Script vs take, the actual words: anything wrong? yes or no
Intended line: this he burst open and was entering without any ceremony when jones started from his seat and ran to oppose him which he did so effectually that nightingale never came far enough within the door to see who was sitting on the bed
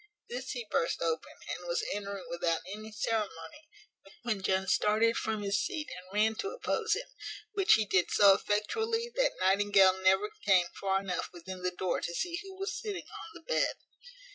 no